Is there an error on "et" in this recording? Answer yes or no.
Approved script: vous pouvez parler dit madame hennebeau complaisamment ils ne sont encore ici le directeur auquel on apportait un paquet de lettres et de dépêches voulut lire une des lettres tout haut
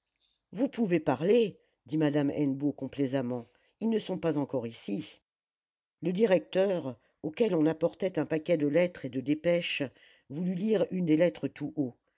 no